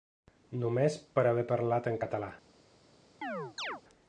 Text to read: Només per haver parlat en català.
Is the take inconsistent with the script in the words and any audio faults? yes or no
yes